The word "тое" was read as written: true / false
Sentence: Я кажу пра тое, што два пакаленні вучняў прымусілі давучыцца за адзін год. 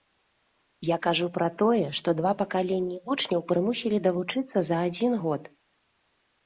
true